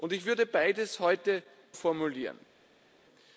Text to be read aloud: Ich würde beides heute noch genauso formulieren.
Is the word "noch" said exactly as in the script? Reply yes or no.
no